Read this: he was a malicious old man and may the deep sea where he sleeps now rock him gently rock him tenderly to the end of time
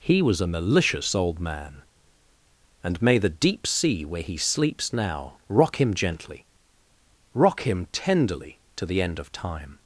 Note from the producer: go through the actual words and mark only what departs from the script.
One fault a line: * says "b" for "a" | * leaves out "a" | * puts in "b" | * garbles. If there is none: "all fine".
all fine